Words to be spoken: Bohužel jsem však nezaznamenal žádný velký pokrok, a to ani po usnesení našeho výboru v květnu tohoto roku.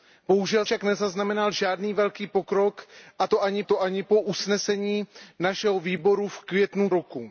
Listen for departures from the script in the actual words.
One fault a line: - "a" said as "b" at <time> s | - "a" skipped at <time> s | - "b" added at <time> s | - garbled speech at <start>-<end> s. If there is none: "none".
- "jsem" skipped at 0.7 s
- "to ani" added at 3.6 s
- "tohoto" skipped at 6.9 s